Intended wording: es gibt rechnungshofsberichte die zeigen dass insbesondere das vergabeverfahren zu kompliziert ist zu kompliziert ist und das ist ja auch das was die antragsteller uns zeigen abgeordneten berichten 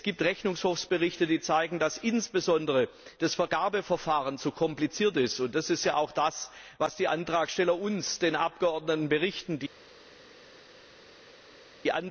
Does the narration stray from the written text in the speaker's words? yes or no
yes